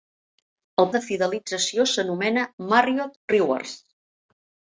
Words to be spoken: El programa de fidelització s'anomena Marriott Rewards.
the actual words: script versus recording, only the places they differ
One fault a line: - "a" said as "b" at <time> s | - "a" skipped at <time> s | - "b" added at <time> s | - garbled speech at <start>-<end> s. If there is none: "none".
- "programa" skipped at 0.9 s